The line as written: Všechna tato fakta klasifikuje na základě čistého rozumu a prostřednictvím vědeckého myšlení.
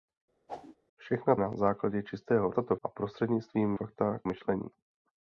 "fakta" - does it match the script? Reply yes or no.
no